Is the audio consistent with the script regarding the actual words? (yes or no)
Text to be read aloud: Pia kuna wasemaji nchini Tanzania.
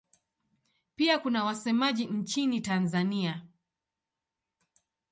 yes